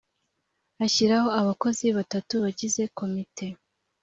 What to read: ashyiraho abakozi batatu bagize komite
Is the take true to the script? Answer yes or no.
yes